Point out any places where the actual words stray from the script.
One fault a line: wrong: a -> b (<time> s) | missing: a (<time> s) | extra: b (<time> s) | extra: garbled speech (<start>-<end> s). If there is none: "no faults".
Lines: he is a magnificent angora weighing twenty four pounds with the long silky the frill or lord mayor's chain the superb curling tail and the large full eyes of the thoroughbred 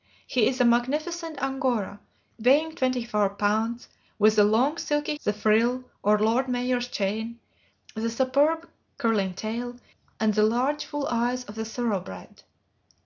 no faults